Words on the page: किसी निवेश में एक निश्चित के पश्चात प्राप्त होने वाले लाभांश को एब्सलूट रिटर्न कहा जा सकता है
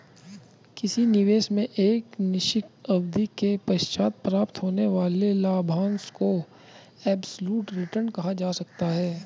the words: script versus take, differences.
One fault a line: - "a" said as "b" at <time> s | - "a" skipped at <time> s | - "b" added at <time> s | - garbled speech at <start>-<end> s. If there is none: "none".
- "अवधि" added at 2.9 s